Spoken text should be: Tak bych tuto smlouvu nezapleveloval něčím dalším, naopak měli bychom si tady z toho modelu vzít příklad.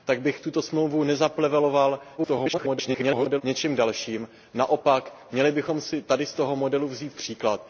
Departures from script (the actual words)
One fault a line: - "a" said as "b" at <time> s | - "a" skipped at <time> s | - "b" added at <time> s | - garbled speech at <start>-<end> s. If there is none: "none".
- garbled speech at 2.2-3.4 s